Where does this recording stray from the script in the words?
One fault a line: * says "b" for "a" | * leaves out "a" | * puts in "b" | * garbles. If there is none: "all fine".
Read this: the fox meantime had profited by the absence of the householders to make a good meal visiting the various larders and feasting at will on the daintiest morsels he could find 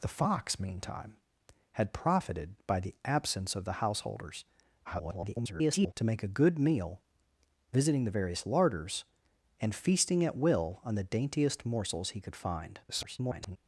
* garbles
* garbles